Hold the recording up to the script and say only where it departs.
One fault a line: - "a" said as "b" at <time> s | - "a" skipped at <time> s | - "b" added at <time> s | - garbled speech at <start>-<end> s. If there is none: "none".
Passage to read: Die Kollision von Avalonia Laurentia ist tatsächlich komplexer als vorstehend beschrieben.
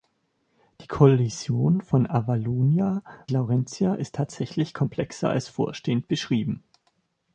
none